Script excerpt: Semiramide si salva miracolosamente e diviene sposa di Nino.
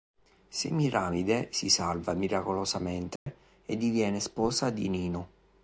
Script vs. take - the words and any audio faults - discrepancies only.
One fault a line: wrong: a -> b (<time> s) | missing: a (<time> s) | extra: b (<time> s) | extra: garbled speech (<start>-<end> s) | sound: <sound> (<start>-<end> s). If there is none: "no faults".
sound: dropout (3.2-3.3 s)